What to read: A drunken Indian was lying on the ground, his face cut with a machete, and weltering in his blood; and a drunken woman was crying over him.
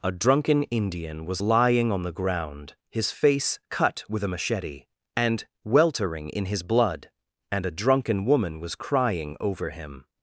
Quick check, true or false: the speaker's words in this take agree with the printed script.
true